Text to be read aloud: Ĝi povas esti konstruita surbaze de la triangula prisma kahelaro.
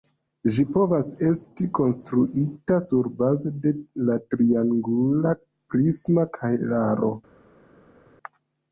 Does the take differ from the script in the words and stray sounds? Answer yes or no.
no